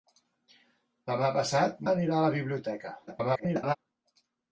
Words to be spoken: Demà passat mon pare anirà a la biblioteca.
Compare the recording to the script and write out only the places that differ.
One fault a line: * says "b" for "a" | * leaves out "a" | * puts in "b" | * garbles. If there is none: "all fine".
* leaves out "mon pare"
* garbles